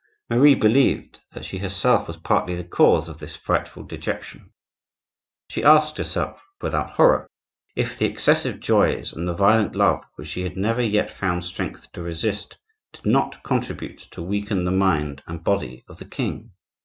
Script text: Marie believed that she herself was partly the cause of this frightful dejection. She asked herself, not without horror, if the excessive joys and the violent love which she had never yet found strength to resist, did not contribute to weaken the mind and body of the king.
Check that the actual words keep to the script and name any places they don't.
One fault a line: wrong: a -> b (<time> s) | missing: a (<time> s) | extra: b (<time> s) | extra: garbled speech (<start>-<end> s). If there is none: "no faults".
missing: not (6.5 s)